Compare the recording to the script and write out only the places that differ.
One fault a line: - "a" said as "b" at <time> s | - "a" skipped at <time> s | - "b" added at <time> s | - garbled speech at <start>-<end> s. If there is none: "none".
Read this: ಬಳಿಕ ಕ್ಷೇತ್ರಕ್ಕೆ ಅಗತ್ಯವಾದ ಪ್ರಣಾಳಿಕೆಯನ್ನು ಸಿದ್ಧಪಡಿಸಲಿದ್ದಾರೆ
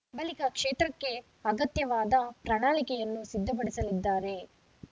none